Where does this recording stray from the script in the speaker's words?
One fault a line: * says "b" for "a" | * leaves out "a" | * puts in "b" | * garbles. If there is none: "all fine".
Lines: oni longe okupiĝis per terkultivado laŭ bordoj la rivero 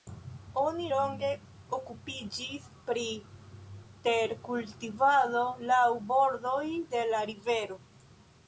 * says "pri" for "per"
* puts in "de"